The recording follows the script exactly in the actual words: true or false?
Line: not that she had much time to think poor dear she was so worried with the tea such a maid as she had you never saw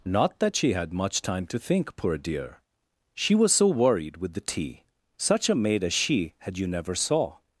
true